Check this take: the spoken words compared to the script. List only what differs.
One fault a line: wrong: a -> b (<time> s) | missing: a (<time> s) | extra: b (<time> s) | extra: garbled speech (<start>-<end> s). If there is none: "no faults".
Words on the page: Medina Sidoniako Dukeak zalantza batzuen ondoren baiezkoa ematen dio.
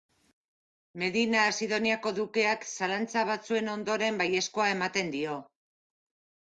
no faults